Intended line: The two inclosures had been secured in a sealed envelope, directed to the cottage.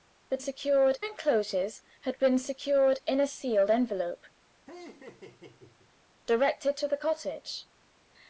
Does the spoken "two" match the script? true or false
false